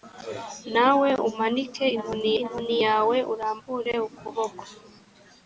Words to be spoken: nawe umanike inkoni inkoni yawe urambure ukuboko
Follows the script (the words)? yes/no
yes